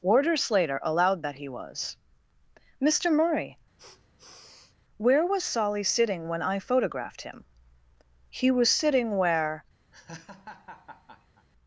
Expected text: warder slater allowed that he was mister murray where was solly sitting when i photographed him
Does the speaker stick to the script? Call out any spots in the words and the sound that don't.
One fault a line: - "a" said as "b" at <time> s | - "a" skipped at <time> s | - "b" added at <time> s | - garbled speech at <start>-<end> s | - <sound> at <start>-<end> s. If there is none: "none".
- sniff at 3.8-4.8 s
- "he was sitting where" added at 8.3 s
- laugh at 9.9-11.5 s